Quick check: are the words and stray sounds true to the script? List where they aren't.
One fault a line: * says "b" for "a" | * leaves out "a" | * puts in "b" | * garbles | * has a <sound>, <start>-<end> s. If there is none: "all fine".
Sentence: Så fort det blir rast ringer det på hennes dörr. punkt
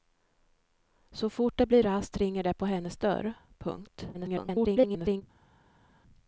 * garbles